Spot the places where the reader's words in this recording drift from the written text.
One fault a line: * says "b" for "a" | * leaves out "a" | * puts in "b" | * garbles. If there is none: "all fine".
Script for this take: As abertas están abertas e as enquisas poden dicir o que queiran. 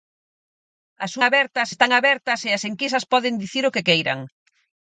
all fine